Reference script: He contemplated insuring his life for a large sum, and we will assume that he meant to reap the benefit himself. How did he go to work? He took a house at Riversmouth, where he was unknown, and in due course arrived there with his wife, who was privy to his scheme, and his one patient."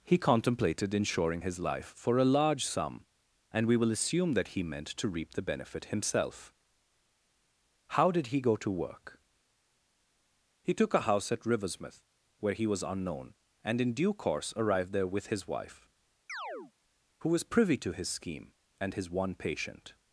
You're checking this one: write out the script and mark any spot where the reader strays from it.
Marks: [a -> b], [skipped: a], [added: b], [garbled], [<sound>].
He contemplated insuring his life for a large sum, and we will assume that he meant to reap the benefit himself. How did he go to work? He took a house at Riversmouth, where he was unknown, and in due course arrived there with his wife, [chirp] who was privy to his scheme, and his one patient."